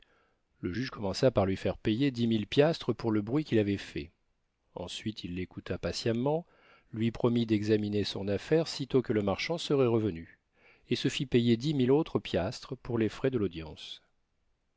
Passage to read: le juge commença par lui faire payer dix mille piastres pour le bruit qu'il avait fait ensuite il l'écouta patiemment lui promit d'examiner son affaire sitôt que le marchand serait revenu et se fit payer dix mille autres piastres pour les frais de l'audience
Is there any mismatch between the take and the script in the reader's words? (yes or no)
no